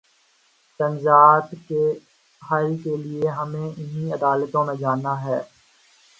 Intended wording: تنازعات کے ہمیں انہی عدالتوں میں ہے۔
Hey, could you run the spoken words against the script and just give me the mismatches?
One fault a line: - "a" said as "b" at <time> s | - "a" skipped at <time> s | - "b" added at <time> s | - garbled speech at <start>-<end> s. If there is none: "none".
- "حل کے لیے" added at 2.4 s
- "جانا" added at 4.8 s